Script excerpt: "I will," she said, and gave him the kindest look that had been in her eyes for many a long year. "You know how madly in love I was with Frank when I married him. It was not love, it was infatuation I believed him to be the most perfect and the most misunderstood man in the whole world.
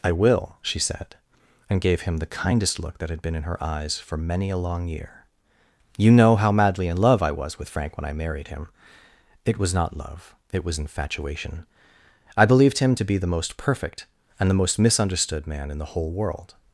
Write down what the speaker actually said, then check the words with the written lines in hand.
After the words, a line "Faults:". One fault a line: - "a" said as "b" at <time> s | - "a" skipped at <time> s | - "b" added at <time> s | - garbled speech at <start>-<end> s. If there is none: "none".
"I will," she said, and gave him the kindest look that had been in her eyes for many a long year. "You know how madly in love I was with Frank when I married him. It was not love, it was infatuation I believed him to be the most perfect and the most misunderstood man in the whole world.
Faults:
none